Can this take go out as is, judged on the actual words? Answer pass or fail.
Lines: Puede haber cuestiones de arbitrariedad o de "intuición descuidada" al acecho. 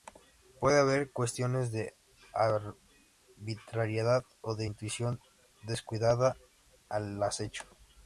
pass